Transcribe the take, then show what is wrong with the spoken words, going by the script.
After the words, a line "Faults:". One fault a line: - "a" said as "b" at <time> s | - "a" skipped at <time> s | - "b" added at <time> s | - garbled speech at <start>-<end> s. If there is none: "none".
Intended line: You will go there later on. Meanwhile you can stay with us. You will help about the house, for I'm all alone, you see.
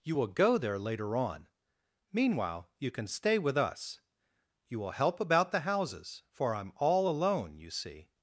You will go there later on. Meanwhile you can stay with us. You will help about the houses, for I'm all alone, you see.
Faults:
- "house" said as "houses" at 5.6 s